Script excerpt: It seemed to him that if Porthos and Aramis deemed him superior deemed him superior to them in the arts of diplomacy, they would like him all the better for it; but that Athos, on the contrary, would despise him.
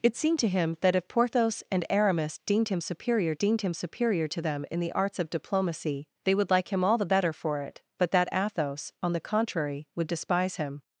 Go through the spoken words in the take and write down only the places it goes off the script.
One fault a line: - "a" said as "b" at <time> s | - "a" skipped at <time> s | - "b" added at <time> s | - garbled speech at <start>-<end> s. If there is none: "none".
none